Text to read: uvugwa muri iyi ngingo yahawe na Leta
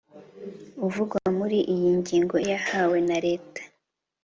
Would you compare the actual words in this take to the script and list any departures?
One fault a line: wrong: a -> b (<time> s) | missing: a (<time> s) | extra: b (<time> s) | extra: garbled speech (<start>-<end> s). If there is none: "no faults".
no faults